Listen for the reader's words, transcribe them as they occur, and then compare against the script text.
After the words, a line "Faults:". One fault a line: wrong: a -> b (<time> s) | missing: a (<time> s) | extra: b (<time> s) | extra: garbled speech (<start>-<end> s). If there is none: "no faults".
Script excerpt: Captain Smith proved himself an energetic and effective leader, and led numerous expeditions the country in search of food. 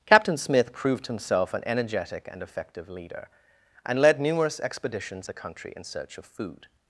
Captain Smith proved himself an energetic and effective leader, and led numerous expeditions the country in search of food.
Faults:
no faults